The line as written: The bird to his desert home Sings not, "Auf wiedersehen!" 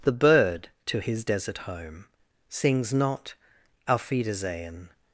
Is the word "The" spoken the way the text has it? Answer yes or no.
yes